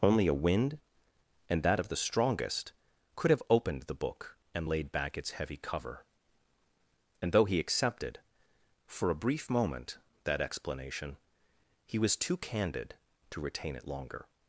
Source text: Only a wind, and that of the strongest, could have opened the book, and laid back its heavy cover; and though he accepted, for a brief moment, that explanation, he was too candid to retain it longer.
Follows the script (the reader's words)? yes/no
yes